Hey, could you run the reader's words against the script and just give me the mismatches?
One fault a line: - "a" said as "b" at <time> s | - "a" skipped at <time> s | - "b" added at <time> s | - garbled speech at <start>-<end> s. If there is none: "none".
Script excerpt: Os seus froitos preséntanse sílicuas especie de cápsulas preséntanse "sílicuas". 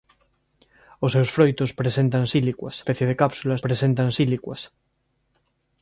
none